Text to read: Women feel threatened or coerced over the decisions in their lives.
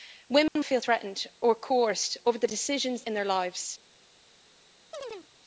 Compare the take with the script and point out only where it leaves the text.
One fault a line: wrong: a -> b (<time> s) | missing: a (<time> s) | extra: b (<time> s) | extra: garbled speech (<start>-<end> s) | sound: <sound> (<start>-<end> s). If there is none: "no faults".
sound: dropout (0.5-0.6 s)
sound: chirp (4.9-5.3 s)